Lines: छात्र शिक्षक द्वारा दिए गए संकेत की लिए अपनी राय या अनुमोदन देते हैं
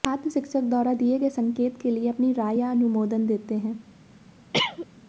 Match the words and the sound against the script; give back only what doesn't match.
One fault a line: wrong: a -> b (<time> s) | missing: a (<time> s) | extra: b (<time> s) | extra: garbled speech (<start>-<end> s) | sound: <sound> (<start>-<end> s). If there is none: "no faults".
wrong: की -> के (1.8 s)
sound: cough (4.5-4.9 s)